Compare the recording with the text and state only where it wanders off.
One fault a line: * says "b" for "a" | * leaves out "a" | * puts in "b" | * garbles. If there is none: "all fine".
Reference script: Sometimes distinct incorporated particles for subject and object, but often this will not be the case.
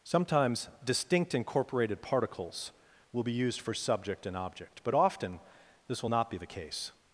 * puts in "will be used"